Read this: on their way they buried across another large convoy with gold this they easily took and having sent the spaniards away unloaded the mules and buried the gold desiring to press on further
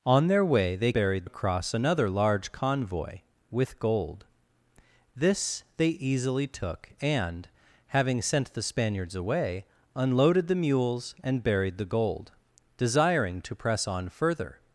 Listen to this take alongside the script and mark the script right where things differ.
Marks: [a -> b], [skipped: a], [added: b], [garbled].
on their way they buried across another large convoy with gold this they easily took and having sent the spaniards away unloaded the mules and buried the gold desiring to press on further